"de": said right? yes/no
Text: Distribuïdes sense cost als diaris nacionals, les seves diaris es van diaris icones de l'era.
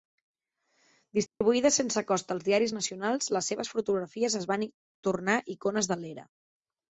yes